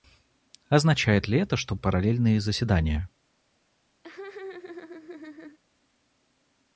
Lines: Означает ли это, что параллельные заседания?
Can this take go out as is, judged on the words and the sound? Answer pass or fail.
fail